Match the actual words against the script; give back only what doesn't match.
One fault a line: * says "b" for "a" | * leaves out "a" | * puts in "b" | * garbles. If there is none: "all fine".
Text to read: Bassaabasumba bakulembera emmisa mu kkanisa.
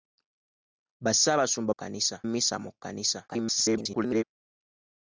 * says "kkanisa" for "bakulembera"
* garbles